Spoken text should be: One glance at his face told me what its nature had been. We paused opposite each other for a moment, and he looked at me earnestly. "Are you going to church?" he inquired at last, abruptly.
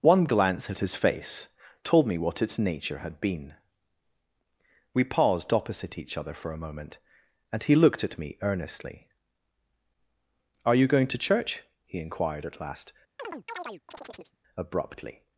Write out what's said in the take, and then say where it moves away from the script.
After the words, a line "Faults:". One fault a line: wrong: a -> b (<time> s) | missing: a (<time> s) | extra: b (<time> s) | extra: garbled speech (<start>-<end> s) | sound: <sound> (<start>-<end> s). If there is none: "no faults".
One glance at his face told me what its nature had been. We paused opposite each other for a moment, and he looked at me earnestly. "Are you going to church?" he inquired at last, abruptly.
Faults:
sound: chirp (13.2-14.4 s)